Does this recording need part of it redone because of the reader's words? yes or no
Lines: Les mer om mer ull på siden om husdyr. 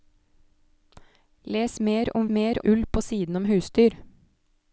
no